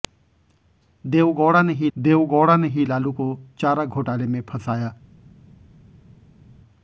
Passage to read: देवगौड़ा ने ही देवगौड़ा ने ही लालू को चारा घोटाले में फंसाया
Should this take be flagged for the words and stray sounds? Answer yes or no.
no